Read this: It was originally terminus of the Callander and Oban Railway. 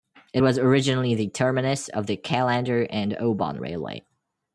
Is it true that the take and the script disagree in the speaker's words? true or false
true